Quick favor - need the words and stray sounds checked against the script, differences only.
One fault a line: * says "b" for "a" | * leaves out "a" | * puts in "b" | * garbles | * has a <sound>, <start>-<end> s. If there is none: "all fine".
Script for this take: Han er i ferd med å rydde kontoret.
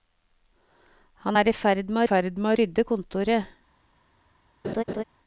* puts in "ferd med"
* has a laugh, 4.6-5.0 s